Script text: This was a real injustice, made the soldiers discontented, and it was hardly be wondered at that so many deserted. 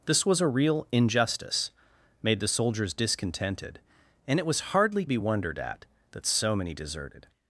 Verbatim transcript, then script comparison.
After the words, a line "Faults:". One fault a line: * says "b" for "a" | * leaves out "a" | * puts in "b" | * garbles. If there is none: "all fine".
This was a real injustice, made the soldiers discontented, and it was hardly be wondered at that so many deserted.
Faults:
all fine